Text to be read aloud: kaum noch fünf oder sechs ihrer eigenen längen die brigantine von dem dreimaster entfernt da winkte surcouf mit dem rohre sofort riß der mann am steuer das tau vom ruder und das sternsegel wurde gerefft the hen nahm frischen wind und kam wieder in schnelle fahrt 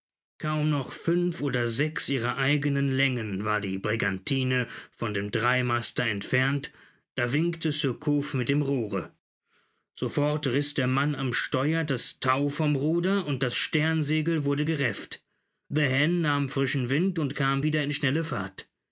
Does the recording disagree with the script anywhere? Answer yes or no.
yes